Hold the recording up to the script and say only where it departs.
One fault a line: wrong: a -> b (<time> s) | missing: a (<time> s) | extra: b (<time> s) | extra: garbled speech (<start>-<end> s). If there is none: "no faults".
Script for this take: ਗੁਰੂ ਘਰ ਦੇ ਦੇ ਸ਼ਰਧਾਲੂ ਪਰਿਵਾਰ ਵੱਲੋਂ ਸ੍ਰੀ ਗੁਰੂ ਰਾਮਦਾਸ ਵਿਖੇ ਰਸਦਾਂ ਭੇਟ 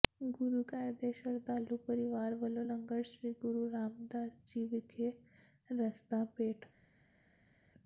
missing: ਦੇ (1.1 s)
extra: ਲੰਗਰ (2.6 s)
extra: ਜੀ (4.5 s)